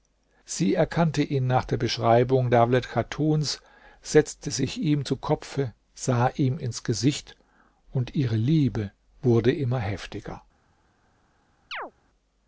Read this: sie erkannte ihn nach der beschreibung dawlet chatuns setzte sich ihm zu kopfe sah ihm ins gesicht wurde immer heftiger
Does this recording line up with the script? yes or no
no